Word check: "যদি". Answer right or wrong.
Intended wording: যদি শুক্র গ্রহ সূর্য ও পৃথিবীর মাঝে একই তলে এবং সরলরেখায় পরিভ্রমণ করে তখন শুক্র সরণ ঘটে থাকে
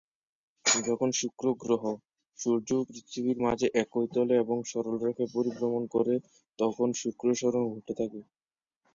wrong